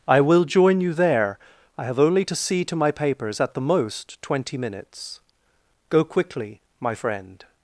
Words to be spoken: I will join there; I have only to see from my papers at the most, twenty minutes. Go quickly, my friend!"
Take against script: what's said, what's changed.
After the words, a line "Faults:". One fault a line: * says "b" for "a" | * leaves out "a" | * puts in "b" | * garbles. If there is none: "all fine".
I will join you there; I have only to see to my papers at the most, twenty minutes. Go quickly, my friend!"
Faults:
* puts in "you"
* says "to" for "from"